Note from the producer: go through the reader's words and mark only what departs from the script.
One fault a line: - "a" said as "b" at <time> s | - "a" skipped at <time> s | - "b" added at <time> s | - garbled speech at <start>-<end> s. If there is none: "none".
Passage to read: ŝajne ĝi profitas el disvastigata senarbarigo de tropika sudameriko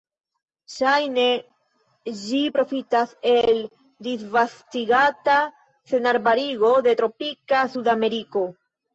none